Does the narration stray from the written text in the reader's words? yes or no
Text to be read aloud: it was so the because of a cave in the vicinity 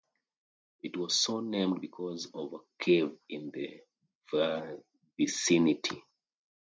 yes